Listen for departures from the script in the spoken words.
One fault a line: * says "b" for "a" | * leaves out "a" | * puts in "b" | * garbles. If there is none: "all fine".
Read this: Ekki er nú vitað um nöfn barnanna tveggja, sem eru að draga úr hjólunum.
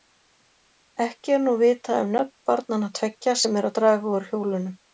all fine